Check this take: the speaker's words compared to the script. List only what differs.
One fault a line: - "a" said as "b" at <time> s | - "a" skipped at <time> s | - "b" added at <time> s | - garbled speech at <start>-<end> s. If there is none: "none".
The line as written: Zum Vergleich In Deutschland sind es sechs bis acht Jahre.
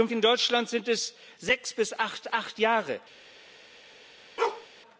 - "Vergleich" skipped at 0.1 s
- "acht" added at 2.3 s